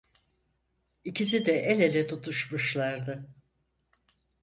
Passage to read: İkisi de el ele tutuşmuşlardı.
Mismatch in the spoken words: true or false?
false